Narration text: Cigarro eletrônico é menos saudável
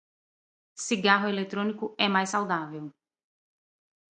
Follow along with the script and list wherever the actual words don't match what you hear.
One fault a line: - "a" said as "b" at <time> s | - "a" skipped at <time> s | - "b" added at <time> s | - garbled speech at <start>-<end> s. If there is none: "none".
- "menos" said as "mais" at 2.1 s